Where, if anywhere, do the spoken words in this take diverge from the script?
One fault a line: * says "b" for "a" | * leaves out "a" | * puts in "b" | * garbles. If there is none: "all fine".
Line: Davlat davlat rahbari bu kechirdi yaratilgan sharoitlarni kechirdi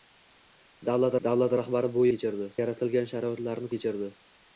all fine